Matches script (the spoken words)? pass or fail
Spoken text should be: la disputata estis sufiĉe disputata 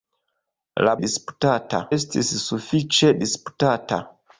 pass